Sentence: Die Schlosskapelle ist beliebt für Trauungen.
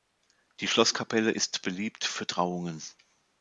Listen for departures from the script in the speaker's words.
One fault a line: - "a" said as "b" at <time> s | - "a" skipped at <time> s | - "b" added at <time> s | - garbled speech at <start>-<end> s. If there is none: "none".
none